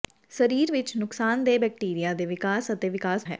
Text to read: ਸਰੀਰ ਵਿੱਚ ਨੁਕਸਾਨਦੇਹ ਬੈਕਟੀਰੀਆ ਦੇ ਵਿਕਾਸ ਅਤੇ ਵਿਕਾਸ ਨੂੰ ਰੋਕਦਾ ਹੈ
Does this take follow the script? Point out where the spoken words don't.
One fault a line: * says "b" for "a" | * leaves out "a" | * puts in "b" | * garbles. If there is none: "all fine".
* leaves out "ਨੂੰ ਰੋਕਦਾ"